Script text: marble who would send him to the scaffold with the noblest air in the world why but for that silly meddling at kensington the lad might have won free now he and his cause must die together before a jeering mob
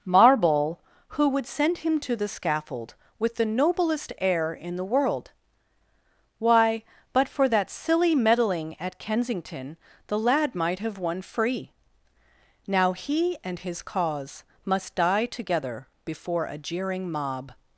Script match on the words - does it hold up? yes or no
yes